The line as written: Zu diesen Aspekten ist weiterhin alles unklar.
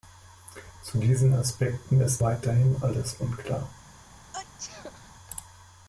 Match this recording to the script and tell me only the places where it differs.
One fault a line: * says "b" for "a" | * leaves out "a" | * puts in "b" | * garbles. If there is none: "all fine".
all fine